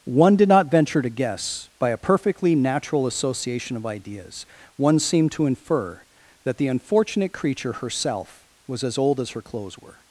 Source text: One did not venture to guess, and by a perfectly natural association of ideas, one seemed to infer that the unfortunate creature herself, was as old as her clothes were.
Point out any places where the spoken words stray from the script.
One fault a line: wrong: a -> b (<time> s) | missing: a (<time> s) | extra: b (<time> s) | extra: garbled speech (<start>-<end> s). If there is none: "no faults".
missing: and (1.7 s)